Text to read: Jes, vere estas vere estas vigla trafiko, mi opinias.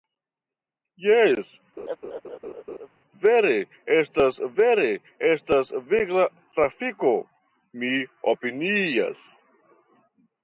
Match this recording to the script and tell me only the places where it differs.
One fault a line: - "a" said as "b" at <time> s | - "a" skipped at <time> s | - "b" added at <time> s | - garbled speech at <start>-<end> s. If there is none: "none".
none